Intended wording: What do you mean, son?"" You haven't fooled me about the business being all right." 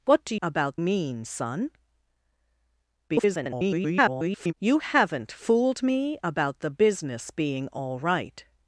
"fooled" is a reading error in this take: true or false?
false